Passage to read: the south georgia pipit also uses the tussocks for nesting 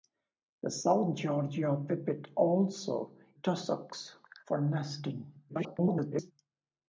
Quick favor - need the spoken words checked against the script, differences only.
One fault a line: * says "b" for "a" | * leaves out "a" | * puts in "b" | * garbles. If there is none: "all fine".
* leaves out "uses the"
* garbles